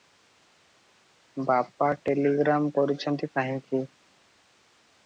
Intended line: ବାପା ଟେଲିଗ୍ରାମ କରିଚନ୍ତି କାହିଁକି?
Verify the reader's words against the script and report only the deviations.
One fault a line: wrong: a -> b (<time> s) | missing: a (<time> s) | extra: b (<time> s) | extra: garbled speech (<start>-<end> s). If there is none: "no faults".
no faults